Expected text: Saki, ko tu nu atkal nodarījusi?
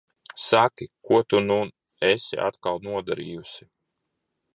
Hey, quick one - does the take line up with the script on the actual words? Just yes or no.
no